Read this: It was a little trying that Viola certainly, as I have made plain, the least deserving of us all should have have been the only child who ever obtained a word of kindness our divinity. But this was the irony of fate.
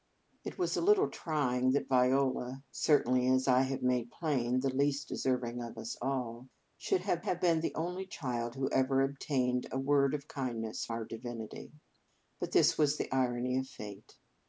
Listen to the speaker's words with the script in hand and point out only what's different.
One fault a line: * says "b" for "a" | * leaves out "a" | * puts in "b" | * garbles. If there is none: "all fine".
all fine